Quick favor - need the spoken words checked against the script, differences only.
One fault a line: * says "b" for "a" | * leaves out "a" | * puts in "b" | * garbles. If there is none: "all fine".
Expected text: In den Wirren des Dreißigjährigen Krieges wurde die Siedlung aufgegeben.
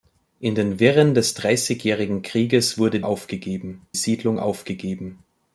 * says "aufgegeben" for "die"